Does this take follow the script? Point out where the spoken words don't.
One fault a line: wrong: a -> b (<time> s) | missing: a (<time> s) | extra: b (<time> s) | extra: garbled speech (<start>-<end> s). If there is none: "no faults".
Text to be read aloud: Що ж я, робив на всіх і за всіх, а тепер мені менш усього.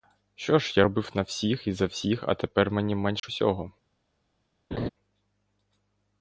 no faults